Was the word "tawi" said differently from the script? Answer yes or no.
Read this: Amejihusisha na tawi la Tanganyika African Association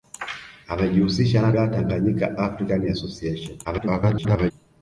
yes